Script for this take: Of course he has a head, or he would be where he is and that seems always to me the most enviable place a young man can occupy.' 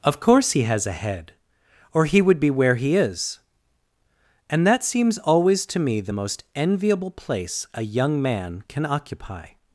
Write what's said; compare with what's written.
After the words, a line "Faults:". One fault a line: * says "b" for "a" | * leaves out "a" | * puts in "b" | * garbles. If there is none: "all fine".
Of course he has a head, or he would be where he is and that seems always to me the most enviable place a young man can occupy.'
Faults:
all fine